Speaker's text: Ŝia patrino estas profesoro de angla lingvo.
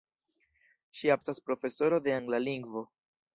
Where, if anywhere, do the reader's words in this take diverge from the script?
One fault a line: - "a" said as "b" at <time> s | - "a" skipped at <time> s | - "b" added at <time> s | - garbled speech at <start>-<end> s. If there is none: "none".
- "patrino" skipped at 1.2 s